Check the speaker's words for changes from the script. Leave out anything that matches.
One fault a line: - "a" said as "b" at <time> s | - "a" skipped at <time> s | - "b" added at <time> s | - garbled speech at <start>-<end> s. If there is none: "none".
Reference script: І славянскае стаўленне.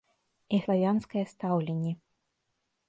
none